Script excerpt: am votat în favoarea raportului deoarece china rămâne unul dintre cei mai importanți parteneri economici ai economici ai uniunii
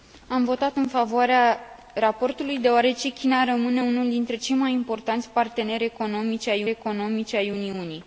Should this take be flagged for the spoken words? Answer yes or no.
no